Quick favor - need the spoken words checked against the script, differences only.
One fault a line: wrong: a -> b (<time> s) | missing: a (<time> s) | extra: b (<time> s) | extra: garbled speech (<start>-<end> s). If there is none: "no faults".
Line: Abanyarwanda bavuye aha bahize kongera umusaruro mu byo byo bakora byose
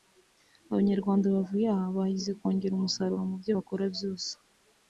missing: byo (3.5 s)